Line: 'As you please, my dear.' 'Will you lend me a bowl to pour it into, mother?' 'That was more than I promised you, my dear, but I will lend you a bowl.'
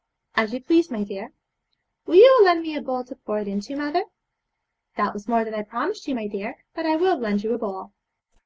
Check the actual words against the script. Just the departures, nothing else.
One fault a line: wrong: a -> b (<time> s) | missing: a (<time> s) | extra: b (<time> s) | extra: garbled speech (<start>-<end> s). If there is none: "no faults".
no faults